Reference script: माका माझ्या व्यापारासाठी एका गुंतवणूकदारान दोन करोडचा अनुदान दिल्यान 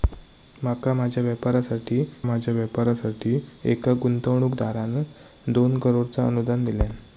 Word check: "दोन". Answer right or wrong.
right